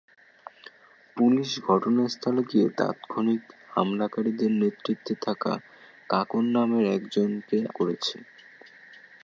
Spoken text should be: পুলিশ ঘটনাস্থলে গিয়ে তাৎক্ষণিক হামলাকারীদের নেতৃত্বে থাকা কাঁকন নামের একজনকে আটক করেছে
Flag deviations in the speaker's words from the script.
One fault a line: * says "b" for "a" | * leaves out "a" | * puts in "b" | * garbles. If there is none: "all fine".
* leaves out "আটক"